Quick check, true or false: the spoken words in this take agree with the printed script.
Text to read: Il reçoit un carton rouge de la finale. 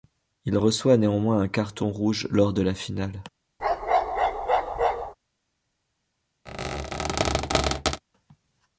false